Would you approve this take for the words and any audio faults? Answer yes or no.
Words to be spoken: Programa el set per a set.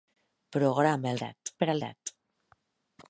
yes